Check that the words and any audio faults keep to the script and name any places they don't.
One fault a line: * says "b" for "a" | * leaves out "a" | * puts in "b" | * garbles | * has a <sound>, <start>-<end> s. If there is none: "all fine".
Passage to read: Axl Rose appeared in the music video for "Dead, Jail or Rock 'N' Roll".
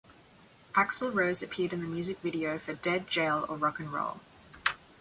all fine